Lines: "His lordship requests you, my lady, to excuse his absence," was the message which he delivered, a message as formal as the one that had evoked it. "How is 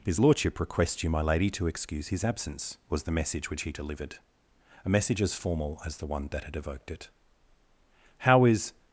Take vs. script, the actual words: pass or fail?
pass